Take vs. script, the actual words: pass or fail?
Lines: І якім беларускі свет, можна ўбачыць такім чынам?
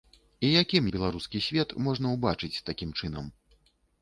pass